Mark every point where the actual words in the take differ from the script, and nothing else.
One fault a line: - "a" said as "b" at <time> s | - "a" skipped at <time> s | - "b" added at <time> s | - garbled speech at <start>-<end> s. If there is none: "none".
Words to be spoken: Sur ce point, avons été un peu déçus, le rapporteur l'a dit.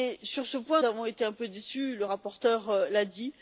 none